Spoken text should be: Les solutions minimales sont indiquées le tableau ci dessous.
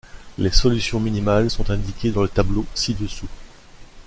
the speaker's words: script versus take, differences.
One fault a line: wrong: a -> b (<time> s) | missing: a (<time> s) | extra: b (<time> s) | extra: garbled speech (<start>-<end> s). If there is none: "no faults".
extra: dans (2.1 s)